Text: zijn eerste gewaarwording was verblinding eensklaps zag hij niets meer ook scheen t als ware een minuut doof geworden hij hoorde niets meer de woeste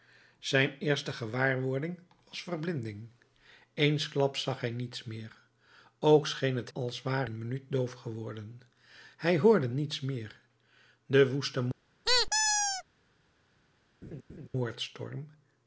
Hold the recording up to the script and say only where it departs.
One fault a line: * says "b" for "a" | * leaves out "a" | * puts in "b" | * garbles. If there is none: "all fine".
all fine